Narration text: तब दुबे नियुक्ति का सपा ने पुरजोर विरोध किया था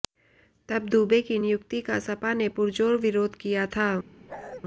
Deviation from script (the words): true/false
true